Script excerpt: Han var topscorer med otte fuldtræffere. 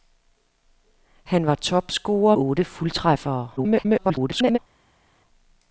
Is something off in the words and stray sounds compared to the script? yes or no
yes